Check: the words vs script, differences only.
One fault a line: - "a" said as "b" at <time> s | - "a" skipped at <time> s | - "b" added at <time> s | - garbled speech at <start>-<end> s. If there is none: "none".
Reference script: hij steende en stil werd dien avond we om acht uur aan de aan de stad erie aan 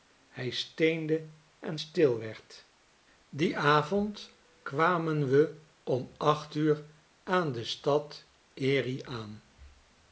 - "kwamen" added at 4.6 s
- "aan de" skipped at 7.6 s